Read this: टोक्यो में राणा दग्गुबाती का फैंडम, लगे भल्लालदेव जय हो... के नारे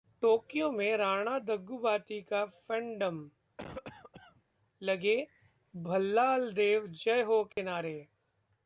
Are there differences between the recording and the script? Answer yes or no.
no